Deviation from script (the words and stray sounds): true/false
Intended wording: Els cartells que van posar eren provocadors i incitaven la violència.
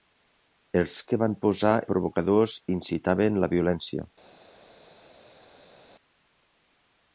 true